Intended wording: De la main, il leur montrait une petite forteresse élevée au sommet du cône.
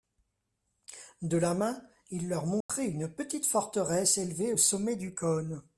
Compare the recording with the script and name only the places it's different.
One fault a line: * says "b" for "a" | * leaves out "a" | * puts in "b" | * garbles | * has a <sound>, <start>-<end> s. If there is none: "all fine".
* has a dropout, 2.6-2.7 s